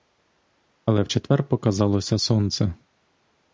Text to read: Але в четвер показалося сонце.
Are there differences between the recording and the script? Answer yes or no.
no